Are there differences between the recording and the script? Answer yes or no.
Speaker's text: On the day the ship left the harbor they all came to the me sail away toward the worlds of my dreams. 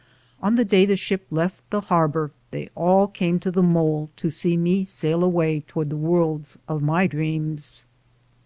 yes